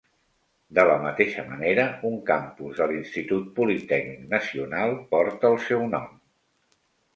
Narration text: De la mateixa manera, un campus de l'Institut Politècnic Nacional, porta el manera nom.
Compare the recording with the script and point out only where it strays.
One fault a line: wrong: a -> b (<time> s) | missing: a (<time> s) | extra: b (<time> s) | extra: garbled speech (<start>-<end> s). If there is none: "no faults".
wrong: manera -> seu (5.7 s)